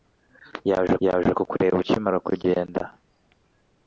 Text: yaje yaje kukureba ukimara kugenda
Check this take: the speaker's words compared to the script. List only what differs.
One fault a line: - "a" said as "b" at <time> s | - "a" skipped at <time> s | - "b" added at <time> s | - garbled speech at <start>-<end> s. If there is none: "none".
none